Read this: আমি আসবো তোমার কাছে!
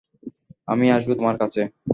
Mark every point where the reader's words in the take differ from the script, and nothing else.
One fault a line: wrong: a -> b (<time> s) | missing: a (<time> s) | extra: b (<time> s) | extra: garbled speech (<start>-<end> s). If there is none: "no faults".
no faults